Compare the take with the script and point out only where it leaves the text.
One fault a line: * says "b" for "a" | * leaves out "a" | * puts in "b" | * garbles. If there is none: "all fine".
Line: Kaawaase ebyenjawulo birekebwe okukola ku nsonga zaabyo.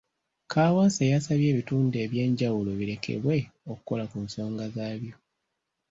* puts in "yasabye ebitundu"